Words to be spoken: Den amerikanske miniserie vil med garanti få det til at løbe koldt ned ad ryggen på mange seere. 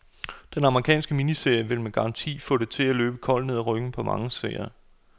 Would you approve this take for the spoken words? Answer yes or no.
yes